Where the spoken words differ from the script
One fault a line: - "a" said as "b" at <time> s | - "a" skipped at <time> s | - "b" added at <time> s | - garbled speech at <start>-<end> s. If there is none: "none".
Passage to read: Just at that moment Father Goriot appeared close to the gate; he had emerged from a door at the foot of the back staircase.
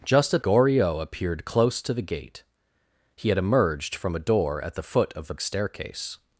- "that moment Father" skipped at 0.4 s
- "back" skipped at 5.3 s